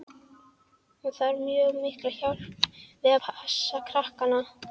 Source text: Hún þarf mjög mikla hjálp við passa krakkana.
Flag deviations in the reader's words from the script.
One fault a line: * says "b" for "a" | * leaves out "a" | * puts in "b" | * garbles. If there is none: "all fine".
all fine